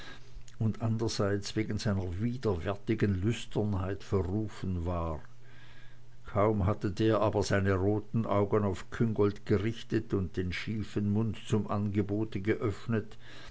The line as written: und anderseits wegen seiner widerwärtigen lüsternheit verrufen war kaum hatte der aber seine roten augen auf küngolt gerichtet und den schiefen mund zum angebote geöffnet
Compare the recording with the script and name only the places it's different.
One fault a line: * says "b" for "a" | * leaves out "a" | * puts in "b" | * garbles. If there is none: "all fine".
all fine